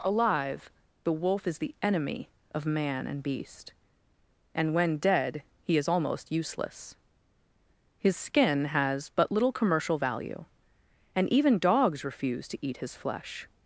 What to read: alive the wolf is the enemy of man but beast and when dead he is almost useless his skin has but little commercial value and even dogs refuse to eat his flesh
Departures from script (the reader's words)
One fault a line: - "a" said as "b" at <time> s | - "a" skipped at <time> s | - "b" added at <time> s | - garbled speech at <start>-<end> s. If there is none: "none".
- "but" said as "and" at 3.1 s